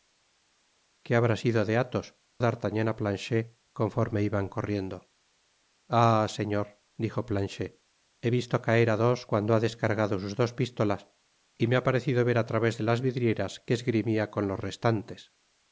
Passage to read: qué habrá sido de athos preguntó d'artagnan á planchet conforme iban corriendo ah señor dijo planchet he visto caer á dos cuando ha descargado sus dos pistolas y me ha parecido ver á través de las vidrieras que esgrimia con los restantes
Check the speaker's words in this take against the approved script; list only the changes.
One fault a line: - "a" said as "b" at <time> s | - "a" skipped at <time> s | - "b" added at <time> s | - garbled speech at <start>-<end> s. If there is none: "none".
- "preguntó" skipped at 2.1 s